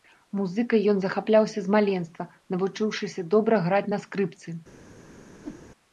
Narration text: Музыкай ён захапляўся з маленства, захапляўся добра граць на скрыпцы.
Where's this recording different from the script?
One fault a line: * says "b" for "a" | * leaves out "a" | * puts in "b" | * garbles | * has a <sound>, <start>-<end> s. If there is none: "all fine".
* says "навучыўшыся" for "захапляўся"
* has a whoosh, 5.3-5.7 s